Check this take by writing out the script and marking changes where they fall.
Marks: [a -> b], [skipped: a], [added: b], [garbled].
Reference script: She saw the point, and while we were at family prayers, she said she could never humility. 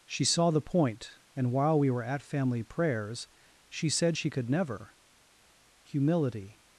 She saw the point, and while we were at family prayers, she said she could never humility.